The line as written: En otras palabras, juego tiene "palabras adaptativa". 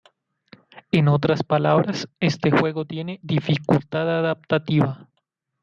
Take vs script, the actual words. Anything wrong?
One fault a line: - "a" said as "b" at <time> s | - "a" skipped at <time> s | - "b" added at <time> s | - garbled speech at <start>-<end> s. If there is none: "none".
- "este" added at 2.2 s
- "palabras" said as "dificultad" at 3.2 s